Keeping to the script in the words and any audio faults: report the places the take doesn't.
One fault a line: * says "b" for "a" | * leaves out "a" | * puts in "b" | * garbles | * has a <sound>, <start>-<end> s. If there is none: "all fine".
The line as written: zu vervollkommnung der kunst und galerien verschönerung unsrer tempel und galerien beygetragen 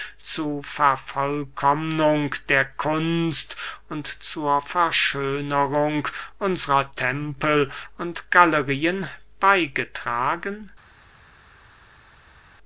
* says "zur" for "galerien"